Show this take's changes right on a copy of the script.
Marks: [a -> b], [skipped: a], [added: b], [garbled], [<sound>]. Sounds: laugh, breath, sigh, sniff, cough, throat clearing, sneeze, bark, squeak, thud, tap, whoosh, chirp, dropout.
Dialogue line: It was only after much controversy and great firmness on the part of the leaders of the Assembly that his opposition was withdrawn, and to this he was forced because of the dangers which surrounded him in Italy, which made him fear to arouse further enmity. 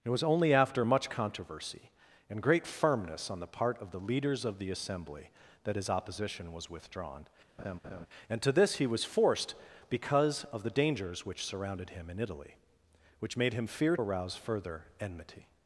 It was only after much controversy and great firmness on the part of the leaders of the Assembly that his opposition was withdrawn, [laugh] and to this he was forced because of the dangers which surrounded him in Italy, which made him fear [skipped: to] arouse further enmity.